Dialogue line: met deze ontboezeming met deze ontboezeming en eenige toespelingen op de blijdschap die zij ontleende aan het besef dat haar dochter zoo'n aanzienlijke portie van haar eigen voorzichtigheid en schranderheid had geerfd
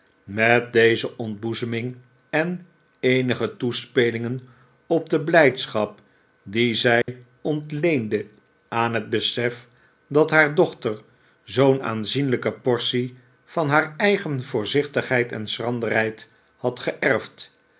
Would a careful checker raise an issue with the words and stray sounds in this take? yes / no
yes